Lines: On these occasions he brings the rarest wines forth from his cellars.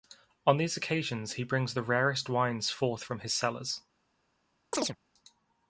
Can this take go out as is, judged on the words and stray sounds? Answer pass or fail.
fail